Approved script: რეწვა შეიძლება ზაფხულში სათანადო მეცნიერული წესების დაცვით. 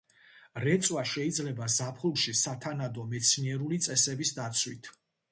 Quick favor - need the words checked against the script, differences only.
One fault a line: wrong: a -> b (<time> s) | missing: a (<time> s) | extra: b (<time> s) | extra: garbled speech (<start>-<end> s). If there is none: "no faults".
no faults